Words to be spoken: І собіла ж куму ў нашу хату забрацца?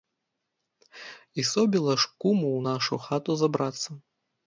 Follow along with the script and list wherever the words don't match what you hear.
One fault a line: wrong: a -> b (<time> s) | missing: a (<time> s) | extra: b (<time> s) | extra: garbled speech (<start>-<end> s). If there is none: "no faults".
no faults